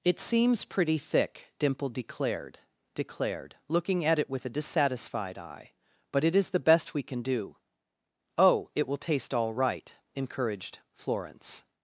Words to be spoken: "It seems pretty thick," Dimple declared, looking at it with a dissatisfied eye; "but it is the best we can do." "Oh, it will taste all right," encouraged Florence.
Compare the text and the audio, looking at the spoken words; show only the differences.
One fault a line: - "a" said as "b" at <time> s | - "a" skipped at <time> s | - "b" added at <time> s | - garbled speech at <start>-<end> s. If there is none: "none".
- "declared" added at 3.0 s